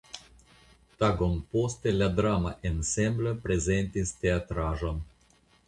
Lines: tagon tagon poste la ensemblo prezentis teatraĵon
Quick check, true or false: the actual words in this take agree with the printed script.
false